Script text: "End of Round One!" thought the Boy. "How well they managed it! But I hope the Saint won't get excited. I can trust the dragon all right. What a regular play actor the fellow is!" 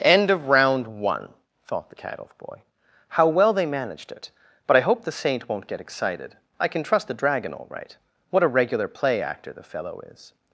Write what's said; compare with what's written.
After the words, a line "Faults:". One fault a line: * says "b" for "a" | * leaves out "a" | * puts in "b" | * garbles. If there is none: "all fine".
"End of Round One!" thought the cat elf Boy. "How well they managed it! But I hope the Saint won't get excited. I can trust the dragon all right. What a regular play actor the fellow is!"
Faults:
* puts in "cat elf"